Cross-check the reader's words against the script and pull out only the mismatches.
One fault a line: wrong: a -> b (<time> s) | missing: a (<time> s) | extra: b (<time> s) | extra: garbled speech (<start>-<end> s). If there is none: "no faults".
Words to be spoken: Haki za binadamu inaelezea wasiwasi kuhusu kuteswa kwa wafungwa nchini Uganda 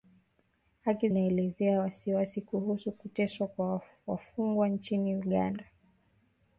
missing: za binadamu (1.1 s)